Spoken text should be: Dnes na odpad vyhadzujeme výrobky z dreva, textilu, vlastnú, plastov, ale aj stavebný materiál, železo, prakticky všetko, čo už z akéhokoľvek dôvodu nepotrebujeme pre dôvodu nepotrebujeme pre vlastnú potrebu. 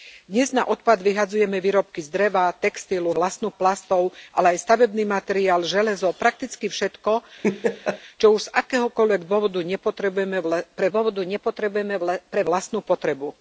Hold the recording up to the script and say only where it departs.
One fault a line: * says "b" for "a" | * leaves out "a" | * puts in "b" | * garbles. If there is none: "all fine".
all fine